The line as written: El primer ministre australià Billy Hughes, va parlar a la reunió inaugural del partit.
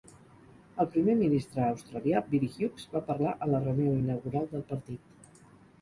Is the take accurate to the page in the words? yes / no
yes